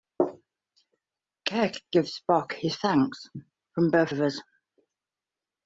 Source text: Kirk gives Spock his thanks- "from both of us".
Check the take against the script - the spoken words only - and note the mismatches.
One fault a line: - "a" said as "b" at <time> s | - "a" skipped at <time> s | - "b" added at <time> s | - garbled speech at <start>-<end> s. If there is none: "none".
none